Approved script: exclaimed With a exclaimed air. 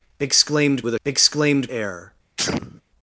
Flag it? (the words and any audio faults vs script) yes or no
yes